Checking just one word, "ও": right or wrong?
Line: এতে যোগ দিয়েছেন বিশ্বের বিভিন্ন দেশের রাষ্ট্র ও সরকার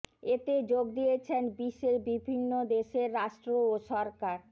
right